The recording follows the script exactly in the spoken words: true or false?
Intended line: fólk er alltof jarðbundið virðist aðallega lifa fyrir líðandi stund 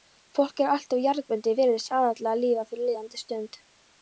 true